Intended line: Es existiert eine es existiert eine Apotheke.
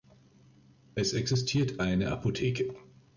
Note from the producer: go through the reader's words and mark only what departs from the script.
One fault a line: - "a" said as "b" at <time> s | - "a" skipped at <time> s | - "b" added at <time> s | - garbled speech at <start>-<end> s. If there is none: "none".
- "es existiert eine" skipped at 2.1 s